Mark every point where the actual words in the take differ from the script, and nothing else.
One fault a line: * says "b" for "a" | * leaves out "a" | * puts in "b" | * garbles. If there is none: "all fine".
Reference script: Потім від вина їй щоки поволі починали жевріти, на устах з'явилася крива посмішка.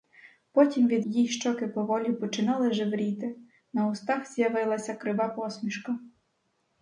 * leaves out "вина"